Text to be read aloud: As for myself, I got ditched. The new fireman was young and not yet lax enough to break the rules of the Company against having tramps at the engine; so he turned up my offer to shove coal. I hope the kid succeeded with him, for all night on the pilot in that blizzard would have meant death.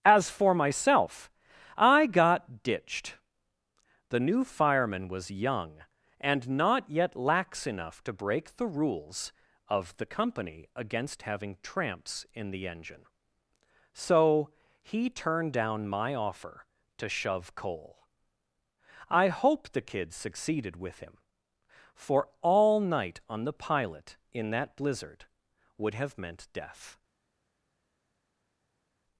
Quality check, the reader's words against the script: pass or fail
fail